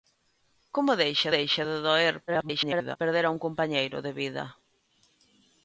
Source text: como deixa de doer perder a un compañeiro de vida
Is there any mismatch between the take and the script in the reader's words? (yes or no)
yes